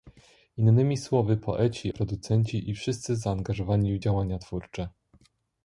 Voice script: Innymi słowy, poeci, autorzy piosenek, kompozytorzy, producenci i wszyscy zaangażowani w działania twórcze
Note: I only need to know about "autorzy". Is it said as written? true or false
false